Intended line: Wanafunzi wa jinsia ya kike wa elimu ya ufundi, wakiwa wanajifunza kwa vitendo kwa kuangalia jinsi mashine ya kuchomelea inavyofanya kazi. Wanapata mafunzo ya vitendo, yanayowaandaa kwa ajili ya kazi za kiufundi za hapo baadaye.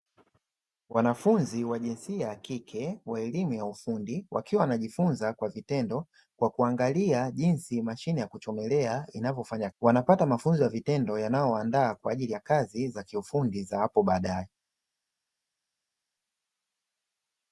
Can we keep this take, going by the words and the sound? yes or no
no